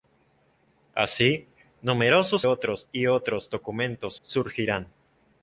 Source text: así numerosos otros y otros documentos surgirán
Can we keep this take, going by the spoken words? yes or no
yes